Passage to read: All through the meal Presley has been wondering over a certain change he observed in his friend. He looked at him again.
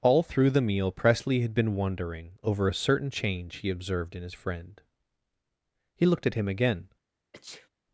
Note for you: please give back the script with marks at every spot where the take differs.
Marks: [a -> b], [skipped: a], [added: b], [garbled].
All through the meal Presley [has -> had] been wondering over a certain change he observed in his friend. He looked at him again.